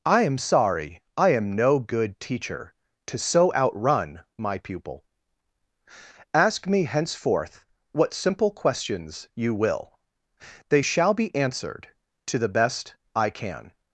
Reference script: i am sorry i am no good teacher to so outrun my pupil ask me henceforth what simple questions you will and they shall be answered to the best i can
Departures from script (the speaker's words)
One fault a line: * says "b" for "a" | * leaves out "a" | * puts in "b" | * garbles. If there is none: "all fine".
* leaves out "and"